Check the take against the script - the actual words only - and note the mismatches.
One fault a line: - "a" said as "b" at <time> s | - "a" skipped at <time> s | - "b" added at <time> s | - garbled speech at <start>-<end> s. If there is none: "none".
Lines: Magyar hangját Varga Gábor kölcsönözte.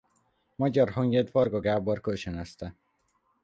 none